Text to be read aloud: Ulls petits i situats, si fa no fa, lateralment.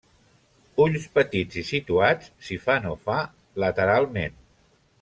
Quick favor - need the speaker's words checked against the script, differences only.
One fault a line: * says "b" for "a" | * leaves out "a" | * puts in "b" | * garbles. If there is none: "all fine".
all fine